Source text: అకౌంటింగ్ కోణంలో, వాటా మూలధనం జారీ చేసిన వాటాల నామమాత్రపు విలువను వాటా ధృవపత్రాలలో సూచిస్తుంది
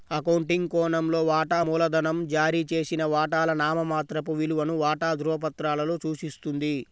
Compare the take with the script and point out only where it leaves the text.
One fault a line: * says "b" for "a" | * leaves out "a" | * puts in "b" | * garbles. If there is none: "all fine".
all fine